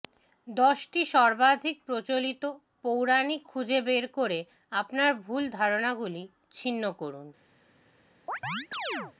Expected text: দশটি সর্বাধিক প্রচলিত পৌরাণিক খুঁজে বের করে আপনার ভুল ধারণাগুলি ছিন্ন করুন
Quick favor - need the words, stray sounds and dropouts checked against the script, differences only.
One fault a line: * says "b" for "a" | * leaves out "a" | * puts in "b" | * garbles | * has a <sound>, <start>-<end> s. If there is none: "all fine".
* has a chirp, 8.3-9.1 s